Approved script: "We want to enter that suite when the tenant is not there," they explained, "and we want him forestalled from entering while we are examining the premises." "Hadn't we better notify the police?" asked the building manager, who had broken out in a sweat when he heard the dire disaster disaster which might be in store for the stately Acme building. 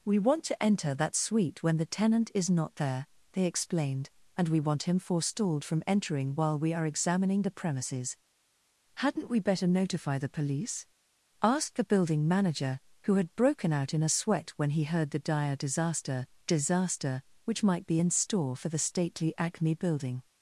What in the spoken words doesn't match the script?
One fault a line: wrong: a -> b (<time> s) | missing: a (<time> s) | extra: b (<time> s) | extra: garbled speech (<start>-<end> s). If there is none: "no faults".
no faults